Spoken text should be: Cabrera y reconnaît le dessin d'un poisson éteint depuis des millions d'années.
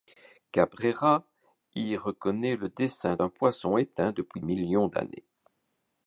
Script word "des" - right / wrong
wrong